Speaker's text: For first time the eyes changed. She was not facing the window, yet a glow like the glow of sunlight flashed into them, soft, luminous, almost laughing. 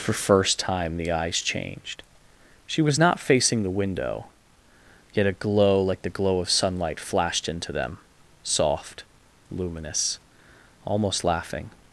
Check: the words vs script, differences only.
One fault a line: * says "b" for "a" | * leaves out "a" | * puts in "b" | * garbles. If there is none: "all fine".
all fine